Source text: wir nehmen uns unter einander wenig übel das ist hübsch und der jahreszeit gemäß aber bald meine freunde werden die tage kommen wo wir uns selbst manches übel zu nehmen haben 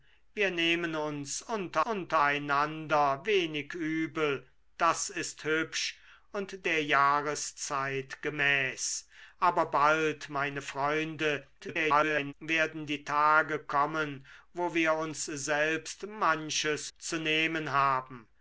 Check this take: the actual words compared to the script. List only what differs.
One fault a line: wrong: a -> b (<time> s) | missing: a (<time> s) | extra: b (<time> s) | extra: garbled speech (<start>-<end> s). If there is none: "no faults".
extra: unter (1.8 s)
extra: garbled speech (11.6-12.3 s)
missing: übel (16.9 s)